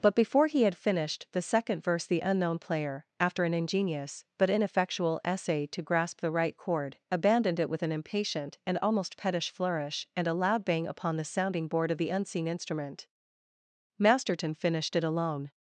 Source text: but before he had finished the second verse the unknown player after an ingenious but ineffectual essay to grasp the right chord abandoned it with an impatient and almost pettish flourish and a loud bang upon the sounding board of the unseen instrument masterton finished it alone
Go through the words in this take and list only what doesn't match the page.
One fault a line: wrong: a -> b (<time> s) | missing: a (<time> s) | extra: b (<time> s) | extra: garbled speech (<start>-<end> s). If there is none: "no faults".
no faults